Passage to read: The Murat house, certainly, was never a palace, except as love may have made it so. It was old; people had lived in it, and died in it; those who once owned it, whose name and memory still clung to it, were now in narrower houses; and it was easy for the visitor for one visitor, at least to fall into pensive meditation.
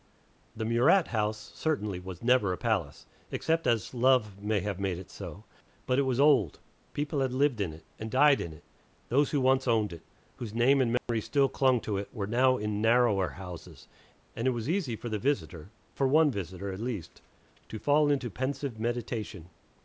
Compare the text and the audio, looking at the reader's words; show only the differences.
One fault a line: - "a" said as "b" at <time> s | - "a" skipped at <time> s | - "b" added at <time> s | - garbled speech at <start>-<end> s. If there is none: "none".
- "But" added at 5.8 s